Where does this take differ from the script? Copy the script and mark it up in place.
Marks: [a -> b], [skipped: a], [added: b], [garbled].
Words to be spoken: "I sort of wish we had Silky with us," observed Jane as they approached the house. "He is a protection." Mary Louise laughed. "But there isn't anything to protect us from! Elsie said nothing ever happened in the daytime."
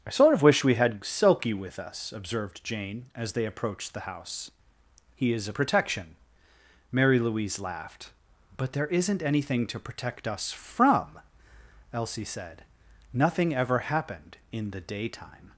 "I sort of wish we had Silky with us," observed Jane as they approached the house. "He is a protection." Mary Louise laughed. "But there isn't anything to protect us from! Elsie said nothing ever happened in the daytime."